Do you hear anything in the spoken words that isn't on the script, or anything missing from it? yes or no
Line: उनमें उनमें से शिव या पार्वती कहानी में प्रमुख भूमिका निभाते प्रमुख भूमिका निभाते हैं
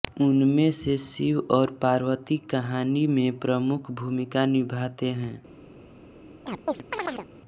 yes